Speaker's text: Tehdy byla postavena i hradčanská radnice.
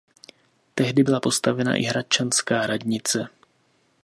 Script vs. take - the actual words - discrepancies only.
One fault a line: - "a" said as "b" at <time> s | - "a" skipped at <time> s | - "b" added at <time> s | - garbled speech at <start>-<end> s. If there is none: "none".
none